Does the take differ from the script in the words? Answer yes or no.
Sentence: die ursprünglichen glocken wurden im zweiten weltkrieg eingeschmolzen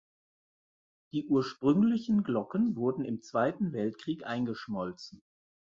no